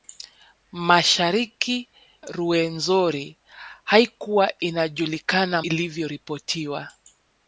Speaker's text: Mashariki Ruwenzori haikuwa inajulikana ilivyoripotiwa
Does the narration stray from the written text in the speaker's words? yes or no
no